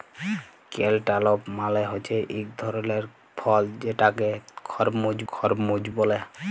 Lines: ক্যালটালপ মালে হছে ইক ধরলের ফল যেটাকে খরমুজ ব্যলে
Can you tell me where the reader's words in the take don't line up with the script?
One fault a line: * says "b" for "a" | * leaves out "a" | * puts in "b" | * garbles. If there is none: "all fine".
* puts in "খরমুজ"